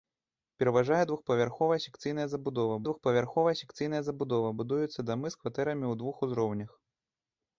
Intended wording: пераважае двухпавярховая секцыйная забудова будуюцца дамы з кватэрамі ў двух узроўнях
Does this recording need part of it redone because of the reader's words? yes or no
yes